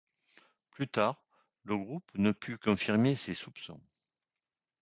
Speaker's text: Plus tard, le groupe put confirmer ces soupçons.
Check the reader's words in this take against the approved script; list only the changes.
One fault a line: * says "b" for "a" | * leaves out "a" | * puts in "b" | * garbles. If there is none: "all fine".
* puts in "ne"